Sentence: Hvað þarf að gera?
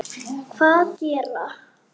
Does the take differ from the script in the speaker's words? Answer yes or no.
yes